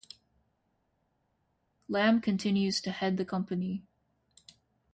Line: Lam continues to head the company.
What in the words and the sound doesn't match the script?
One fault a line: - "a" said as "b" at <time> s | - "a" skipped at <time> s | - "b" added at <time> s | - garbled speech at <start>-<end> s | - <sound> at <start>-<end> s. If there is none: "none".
none